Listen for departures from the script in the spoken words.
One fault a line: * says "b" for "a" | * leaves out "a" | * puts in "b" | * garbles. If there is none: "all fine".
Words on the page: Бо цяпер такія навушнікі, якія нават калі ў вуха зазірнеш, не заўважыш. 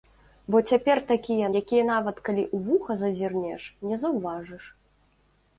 * leaves out "навушнікі"